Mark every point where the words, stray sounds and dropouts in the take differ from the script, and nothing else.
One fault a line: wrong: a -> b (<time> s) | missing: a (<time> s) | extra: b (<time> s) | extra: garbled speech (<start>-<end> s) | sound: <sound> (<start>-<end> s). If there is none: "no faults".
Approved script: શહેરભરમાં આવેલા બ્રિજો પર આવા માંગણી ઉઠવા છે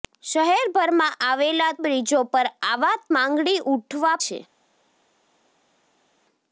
no faults